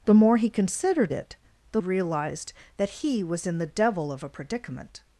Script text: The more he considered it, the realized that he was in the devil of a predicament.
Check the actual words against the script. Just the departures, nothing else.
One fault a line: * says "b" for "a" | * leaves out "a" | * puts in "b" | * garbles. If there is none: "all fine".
all fine